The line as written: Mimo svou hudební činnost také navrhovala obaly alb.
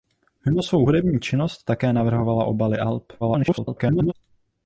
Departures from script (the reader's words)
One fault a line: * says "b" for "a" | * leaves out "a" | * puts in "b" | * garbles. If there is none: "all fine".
* garbles